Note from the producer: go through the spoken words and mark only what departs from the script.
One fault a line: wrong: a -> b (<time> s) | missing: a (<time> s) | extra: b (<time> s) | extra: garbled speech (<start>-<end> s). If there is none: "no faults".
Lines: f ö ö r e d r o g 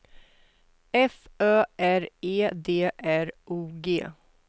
missing: ö (1.6 s)